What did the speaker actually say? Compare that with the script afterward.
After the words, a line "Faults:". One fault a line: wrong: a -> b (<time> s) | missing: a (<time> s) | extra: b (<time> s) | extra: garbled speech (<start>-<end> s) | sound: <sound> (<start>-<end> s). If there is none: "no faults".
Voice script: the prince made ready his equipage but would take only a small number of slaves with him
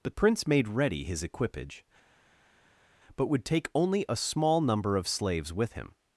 the prince made ready his equipage but would take only a small number of slaves with him
Faults:
no faults